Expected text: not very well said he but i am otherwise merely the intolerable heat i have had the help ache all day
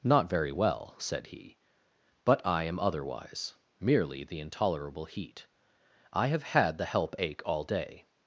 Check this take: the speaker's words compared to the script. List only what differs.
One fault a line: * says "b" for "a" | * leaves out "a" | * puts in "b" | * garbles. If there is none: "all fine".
all fine